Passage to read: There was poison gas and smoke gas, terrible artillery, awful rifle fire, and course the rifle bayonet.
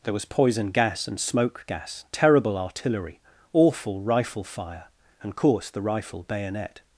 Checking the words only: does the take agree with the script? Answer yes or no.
yes